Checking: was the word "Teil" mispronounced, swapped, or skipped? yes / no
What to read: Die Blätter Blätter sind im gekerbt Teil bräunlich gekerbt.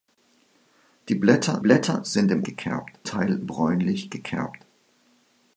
no